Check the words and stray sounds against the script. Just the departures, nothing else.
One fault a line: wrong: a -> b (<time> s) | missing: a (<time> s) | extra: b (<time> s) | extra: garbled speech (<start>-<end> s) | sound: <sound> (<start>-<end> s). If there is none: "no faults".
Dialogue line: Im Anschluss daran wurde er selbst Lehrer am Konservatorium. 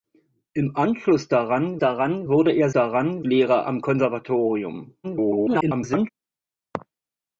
extra: daran (1.8 s)
wrong: selbst -> daran (2.7 s)
extra: garbled speech (5.0-6.1 s)